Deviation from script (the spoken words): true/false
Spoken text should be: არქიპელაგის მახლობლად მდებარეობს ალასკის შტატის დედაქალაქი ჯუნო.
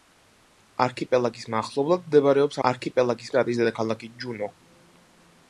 true